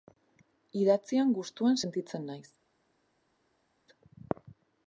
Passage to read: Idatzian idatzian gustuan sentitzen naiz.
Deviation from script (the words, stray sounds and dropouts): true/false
true